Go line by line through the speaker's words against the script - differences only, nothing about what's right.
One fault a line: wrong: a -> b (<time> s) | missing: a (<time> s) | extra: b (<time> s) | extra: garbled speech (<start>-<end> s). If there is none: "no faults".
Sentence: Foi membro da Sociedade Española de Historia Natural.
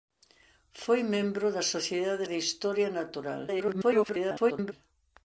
missing: Española (2.2 s)
extra: garbled speech (3.5-4.7 s)